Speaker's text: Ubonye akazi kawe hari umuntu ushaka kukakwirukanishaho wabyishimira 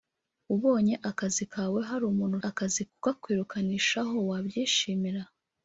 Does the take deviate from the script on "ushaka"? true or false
true